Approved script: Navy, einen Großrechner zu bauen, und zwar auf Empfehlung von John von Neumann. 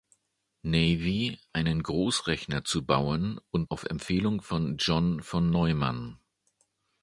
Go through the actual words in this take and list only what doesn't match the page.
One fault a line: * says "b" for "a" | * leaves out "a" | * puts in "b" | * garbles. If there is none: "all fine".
* leaves out "zwar"